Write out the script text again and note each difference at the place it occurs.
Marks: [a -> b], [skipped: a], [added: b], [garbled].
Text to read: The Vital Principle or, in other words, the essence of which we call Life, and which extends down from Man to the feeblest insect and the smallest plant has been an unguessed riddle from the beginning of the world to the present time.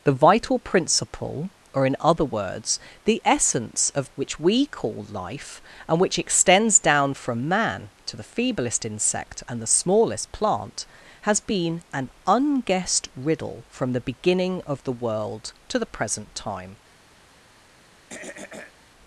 The Vital Principle or, in other words, the essence of which we call Life, and which extends down from Man to the feeblest insect and the smallest plant has been an unguessed riddle from the beginning of the world to the present time.